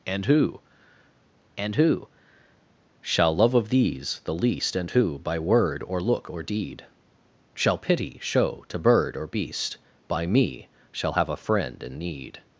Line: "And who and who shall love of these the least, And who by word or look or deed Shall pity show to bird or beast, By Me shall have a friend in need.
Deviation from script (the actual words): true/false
false